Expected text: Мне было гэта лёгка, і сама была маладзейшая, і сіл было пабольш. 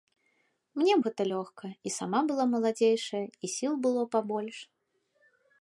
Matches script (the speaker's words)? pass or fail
fail